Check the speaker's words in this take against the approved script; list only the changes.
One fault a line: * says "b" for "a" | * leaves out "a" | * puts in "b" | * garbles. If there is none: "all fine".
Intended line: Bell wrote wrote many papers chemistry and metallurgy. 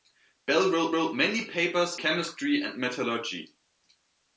all fine